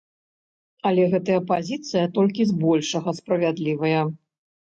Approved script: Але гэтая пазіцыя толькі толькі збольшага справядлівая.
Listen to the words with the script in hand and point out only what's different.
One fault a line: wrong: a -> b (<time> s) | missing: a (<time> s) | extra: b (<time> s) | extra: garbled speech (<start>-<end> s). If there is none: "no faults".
missing: толькі (2.5 s)